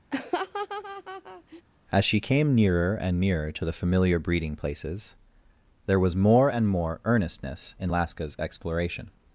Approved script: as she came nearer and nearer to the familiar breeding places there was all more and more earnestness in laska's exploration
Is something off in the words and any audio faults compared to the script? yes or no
yes